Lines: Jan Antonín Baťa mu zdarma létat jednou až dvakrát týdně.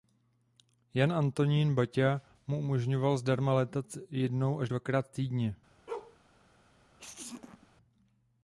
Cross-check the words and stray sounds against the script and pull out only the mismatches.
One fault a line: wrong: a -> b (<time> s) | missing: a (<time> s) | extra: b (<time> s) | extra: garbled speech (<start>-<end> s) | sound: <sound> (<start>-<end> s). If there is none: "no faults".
extra: umožňoval (2.6 s)
sound: bark (5.9-6.2 s)
sound: sneeze (7.0-7.7 s)